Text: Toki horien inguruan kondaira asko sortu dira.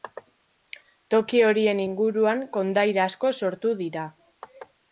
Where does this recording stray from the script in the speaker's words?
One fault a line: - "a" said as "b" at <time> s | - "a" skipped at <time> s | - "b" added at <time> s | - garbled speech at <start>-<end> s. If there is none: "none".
none